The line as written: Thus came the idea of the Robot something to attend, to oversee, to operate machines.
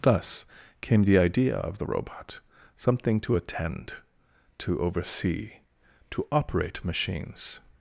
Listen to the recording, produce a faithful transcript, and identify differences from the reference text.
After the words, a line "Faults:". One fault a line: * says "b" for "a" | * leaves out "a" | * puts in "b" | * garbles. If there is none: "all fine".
Thus came the idea of the Robot something to attend, to oversee, to operate machines.
Faults:
all fine